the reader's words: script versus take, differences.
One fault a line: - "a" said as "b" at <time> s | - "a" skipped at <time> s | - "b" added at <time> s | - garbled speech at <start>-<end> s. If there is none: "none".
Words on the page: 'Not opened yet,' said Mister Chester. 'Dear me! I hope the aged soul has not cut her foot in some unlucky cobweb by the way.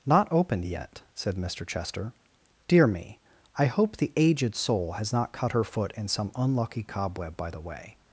none